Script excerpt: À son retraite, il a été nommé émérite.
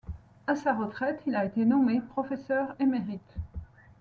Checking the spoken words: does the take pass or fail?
fail